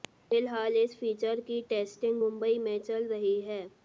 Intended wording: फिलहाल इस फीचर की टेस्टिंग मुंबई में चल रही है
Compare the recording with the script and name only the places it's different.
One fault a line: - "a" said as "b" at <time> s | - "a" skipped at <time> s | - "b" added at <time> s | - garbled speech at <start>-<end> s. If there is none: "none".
none